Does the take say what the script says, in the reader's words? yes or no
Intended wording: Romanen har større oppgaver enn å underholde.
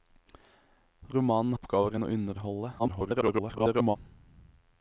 no